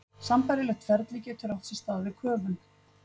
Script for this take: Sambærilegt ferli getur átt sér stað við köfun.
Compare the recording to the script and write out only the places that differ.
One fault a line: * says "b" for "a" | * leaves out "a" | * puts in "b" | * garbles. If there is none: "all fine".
all fine